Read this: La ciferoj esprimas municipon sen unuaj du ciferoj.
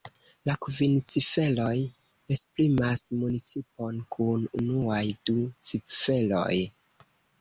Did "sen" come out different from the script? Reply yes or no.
yes